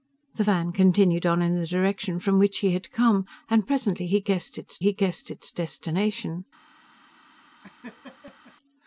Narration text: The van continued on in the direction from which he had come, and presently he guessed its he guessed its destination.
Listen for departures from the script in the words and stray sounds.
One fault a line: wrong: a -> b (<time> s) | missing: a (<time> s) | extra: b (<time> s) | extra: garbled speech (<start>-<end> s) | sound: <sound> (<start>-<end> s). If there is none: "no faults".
sound: laugh (7.6-8.6 s)